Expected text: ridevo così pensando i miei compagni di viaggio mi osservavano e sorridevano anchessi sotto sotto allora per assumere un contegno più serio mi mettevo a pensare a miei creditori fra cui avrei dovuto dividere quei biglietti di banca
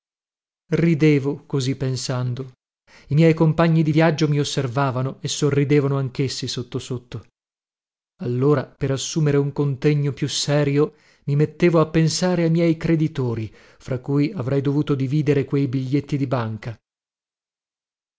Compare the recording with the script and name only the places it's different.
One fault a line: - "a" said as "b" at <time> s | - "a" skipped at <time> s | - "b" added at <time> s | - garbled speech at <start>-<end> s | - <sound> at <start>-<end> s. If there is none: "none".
none